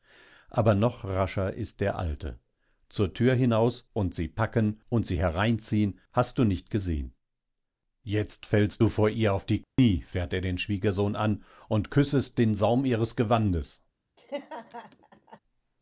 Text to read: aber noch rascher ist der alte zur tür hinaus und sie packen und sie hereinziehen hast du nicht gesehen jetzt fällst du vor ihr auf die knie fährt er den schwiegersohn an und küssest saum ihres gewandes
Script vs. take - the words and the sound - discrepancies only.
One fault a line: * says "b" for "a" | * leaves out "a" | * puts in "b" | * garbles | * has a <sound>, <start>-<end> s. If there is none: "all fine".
* has a dropout, 9.6-9.8 s
* puts in "den"
* has a laugh, 14.2-15.4 s